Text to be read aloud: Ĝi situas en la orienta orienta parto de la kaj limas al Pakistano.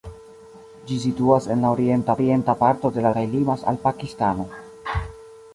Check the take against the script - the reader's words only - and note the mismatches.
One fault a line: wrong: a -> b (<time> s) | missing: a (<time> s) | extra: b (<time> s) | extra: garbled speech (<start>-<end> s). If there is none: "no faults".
no faults